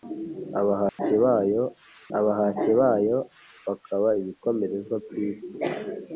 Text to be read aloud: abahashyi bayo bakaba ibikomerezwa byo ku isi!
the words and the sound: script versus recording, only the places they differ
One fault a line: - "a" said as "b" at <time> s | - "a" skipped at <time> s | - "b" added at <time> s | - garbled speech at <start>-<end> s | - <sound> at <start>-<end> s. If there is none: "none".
- dropout at 0.9-1.0 s
- "abahashyi bayo" added at 2.2 s
- "byo" skipped at 4.9 s